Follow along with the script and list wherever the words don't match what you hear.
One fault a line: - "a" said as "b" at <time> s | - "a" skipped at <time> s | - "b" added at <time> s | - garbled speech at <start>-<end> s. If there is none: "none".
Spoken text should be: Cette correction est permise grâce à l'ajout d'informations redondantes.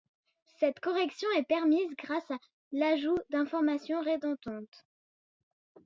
none